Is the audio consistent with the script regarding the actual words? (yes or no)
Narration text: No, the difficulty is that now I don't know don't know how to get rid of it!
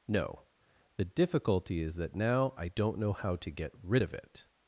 no